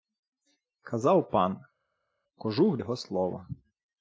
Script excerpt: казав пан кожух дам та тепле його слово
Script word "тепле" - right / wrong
wrong